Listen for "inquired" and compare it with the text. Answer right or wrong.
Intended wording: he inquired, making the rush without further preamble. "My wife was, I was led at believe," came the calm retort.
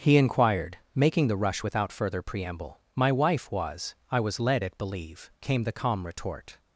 right